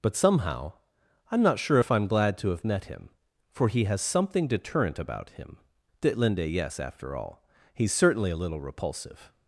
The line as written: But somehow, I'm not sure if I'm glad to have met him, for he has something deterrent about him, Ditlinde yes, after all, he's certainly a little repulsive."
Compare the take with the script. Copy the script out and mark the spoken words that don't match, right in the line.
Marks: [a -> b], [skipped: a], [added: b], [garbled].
But somehow, I'm not sure if I'm glad to have met him, for he has something deterrent about him, Ditlinde yes, after all, he's certainly a little repulsive."